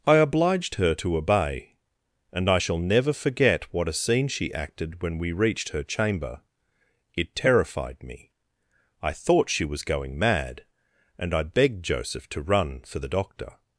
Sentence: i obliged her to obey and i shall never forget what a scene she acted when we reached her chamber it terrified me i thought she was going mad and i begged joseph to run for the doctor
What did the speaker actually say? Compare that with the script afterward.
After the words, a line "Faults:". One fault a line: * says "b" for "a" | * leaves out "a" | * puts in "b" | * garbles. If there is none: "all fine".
i obliged her to obey and i shall never forget what a scene she acted when we reached her chamber it terrified me i thought she was going mad and i begged joseph to run for the doctor
Faults:
all fine